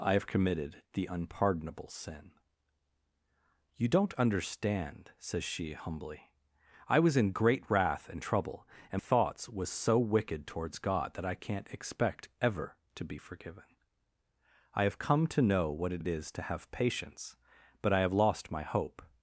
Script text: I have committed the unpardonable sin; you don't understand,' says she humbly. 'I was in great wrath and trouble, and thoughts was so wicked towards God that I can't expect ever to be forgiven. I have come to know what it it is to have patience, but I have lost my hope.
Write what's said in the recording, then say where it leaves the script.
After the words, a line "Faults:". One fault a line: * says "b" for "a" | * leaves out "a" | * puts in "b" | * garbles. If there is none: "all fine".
I have committed the unpardonable sin; you don't understand,' says she humbly. 'I was in great wrath and trouble, and thoughts was so wicked towards God that I can't expect ever to be forgiven. I have come to know what it it is to have patience, but I have lost my hope.
Faults:
all fine